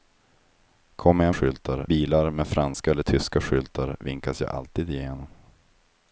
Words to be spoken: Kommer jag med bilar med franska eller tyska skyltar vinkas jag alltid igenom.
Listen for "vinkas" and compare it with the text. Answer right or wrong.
right